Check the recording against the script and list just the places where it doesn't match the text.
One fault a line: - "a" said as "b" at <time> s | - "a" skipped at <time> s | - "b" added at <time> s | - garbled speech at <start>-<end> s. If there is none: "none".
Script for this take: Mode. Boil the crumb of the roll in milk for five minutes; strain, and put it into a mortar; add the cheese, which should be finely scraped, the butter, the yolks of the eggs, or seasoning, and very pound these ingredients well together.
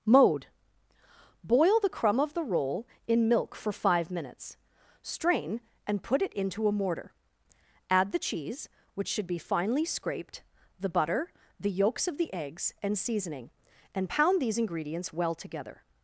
- "or" said as "and" at 12.8 s
- "very" skipped at 14.1 s